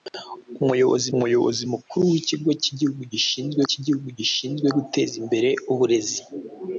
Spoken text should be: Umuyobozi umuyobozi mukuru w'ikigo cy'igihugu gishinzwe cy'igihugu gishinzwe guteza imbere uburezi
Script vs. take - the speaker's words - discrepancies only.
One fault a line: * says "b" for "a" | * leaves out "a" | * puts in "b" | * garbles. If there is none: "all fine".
all fine